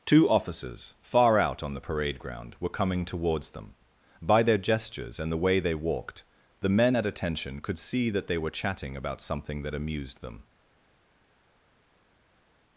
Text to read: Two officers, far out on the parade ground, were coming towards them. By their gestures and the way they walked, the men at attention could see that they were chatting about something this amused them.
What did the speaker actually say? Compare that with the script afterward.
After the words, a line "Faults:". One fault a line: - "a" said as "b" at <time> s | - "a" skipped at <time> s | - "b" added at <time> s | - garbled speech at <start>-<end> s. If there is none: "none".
Two officers, far out on the parade ground, were coming towards them. By their gestures and the way they walked, the men at attention could see that they were chatting about something that amused them.
Faults:
- "this" said as "that" at 9.6 s